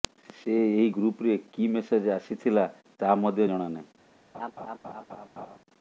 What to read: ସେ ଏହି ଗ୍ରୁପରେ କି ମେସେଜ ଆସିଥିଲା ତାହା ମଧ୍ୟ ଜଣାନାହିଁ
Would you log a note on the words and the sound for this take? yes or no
yes